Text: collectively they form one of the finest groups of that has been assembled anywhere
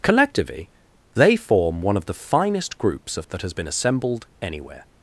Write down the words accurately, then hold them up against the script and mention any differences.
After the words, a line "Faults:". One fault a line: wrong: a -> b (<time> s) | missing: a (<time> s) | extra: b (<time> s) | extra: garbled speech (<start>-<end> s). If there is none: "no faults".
collectively they form one of the finest groups of that has been assembled anywhere
Faults:
no faults